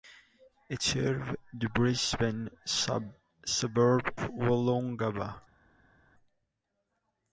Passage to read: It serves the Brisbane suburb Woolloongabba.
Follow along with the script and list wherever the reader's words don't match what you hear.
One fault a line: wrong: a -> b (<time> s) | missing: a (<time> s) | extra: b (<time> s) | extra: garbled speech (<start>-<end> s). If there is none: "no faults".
no faults